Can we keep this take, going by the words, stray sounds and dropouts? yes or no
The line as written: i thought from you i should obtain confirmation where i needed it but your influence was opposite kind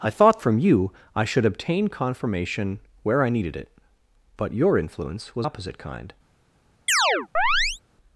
no